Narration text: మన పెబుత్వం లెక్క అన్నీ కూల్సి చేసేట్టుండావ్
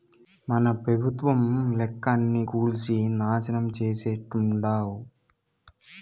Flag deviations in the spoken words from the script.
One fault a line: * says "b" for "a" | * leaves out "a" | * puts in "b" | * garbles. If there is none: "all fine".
* puts in "నాశనం"